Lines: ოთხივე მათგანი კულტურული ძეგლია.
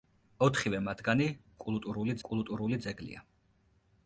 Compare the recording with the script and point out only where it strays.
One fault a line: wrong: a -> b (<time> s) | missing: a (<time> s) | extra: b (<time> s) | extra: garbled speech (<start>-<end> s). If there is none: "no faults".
extra: კულტურული (2.3 s)